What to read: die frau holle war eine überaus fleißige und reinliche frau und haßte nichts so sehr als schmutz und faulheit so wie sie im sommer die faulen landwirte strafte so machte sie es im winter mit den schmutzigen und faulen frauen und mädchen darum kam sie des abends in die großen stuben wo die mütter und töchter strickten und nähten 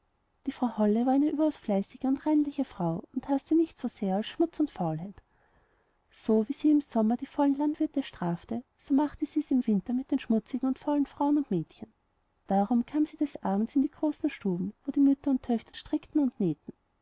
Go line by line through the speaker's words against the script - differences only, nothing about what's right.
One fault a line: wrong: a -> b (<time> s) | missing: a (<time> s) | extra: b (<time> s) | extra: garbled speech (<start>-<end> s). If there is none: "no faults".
no faults